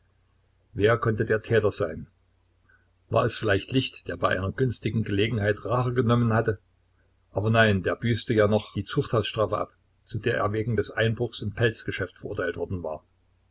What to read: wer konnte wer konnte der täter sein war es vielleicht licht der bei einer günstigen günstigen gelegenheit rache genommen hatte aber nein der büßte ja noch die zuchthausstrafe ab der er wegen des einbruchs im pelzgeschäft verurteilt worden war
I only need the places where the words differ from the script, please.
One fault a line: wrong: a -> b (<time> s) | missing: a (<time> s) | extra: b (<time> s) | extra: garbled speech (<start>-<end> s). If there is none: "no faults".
missing: wer konnte (1.2 s)
missing: günstigen (5.0 s)
extra: zu (10.1 s)